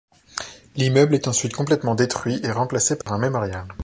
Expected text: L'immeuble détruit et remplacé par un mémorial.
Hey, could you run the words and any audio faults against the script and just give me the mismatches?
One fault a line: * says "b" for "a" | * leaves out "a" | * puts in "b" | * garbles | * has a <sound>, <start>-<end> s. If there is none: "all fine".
* puts in "est ensuite complètement"
* has a dropout, 3.0-3.1 s